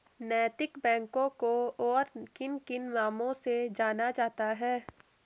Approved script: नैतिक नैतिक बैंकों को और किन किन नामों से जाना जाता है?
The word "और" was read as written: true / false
true